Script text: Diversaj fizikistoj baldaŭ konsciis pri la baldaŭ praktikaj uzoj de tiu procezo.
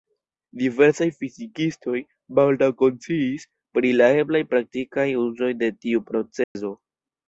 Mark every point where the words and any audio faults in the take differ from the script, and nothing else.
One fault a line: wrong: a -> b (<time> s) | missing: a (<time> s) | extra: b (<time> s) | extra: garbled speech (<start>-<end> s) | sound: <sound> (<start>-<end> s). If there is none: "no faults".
wrong: baldaŭ -> eblaj (4.2 s)
sound: dropout (6.4-6.6 s)